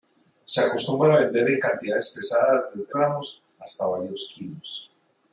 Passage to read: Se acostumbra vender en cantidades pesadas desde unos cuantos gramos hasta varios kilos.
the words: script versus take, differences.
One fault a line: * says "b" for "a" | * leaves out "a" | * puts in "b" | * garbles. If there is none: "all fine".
* leaves out "unos cuantos"